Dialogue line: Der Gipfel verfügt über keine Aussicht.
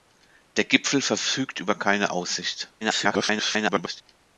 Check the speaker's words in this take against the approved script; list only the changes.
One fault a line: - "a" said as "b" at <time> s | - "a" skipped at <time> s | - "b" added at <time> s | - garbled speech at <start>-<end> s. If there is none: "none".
- garbled speech at 2.8-4.0 s